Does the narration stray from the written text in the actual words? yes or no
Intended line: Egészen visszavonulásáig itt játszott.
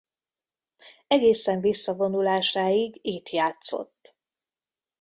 no